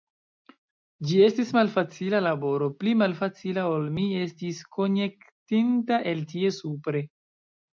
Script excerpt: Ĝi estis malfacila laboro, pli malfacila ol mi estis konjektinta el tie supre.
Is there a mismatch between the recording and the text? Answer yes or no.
no